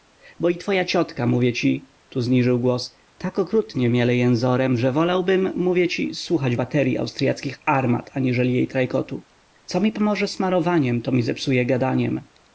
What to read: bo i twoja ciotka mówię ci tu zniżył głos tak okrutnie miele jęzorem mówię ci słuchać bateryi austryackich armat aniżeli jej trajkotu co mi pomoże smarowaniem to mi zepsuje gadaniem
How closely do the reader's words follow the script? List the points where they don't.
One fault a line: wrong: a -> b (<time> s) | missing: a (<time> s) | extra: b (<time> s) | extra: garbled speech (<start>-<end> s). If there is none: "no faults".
extra: że wolałbym (4.8 s)